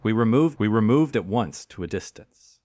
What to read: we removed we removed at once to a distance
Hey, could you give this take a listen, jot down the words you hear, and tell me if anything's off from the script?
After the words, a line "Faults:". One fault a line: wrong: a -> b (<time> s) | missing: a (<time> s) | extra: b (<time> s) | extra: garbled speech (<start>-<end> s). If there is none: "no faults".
we removed we removed at once to a distance
Faults:
no faults